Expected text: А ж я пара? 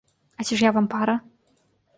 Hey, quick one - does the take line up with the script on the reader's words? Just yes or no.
no